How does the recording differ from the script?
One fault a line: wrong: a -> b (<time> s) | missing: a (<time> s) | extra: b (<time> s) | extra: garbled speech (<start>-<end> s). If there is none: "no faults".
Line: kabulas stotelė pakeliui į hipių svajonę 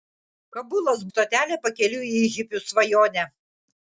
no faults